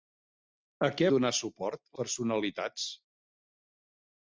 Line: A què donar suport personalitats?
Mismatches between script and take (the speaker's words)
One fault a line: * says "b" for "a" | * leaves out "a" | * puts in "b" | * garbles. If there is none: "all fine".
all fine